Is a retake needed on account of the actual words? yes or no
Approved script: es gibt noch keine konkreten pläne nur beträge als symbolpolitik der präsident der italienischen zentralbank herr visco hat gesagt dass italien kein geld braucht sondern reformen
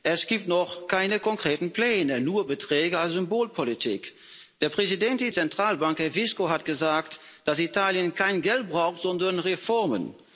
yes